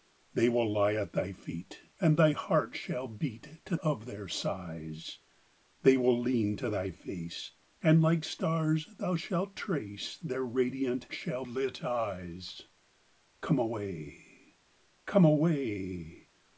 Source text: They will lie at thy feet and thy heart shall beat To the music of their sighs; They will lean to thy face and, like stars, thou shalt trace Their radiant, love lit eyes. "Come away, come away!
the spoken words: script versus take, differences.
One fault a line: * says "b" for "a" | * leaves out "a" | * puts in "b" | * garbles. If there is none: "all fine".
* leaves out "the music"
* says "shall" for "love"